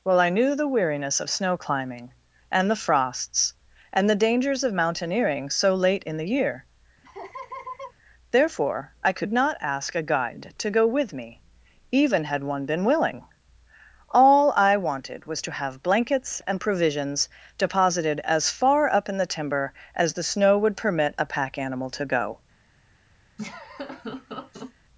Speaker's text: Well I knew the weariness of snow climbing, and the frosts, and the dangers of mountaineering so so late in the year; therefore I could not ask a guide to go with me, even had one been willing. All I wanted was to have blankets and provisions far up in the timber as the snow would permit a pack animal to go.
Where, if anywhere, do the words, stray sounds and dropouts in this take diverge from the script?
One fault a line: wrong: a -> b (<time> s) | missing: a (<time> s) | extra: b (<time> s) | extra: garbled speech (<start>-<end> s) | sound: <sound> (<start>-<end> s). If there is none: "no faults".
missing: so (5.8 s)
sound: laugh (7.0-7.9 s)
extra: deposited as (17.6 s)
sound: laugh (23.4-24.7 s)